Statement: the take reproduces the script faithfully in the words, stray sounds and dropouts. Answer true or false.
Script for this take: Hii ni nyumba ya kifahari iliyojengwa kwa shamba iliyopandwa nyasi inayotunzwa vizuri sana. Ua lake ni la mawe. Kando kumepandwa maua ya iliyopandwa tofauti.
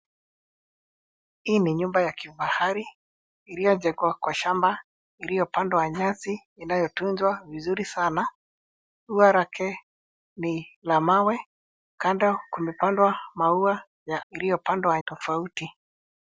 true